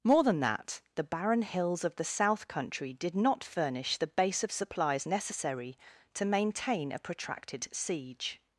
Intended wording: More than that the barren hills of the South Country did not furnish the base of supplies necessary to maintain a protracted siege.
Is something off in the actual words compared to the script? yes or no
no